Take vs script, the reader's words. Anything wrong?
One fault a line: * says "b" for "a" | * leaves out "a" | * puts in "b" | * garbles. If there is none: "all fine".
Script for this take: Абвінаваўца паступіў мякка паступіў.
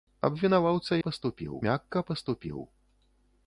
all fine